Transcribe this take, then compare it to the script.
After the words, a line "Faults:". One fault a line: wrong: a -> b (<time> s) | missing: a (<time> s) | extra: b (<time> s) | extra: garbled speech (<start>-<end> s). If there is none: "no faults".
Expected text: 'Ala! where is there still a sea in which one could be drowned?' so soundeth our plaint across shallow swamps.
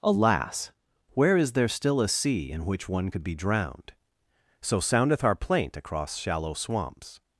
'Alas! where is there still a sea in which one could be drowned?' so soundeth our plaint across shallow swamps.
Faults:
wrong: Ala -> Alas (0.0 s)